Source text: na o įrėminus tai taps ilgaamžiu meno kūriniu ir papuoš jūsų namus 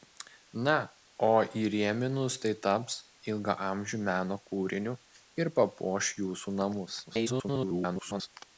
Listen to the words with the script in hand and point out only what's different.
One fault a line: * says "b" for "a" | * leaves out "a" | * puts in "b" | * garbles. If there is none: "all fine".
* garbles